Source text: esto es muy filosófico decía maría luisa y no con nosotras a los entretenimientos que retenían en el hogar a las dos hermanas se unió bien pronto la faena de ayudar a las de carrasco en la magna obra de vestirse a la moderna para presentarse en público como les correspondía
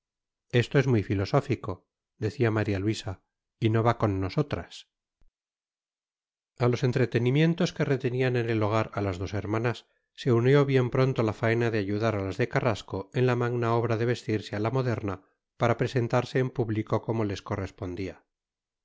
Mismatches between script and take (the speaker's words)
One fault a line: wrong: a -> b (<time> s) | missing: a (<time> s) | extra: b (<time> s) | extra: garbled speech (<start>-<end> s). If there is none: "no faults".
extra: va (3.8 s)